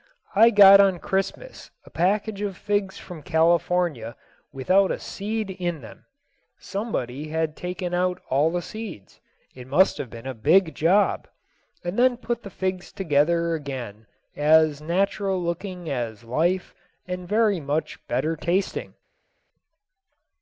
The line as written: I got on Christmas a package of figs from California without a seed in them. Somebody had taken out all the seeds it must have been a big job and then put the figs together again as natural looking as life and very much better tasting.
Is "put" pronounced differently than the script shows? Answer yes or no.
no